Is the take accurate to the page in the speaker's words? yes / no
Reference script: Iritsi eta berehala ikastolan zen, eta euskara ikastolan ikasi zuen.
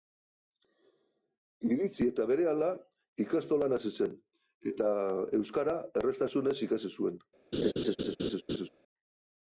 no